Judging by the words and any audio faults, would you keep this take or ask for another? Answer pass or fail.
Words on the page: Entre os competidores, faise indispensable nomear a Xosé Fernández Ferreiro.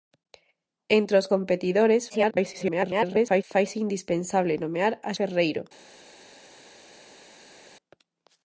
fail